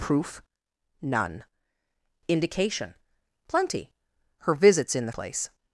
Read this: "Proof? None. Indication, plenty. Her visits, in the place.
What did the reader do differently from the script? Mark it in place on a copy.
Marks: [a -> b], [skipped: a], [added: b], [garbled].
"Proof? None. Indication, plenty. Her visits, in the place.